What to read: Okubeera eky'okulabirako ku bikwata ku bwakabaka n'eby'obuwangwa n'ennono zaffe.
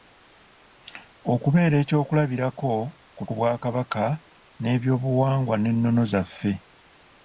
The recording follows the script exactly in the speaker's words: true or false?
false